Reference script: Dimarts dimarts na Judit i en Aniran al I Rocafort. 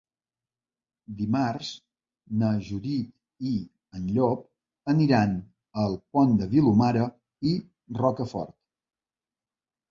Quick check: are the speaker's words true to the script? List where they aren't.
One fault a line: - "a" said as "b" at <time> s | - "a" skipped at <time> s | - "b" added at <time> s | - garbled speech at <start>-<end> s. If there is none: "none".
- "dimarts" skipped at 1.7 s
- "Llop" added at 4.2 s
- "Pont de Vilomara" added at 6.2 s